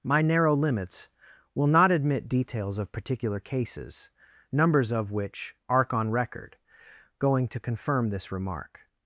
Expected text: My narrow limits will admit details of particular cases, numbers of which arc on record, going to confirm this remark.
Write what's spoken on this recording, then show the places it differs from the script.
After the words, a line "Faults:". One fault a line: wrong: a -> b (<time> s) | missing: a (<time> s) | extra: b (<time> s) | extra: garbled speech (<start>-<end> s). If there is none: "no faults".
My narrow limits will not admit details of particular cases, numbers of which arc on record, going to confirm this remark.
Faults:
extra: not (1.7 s)